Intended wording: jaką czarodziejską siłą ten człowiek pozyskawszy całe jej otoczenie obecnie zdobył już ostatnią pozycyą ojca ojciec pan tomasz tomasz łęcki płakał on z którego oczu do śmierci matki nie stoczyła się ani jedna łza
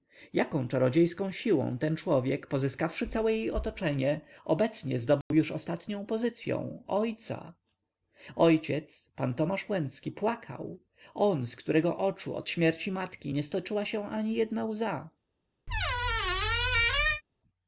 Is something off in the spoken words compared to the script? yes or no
yes